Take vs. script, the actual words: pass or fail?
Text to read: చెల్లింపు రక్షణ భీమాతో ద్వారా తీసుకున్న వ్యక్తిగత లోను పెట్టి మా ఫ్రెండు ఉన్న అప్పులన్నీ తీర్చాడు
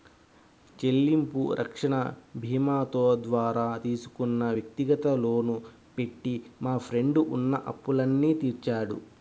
pass